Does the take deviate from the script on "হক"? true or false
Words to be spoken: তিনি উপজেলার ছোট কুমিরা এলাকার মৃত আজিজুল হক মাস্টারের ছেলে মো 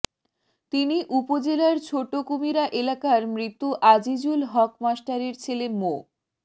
false